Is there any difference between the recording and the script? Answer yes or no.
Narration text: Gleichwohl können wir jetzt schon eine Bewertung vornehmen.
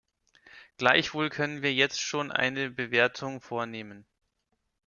no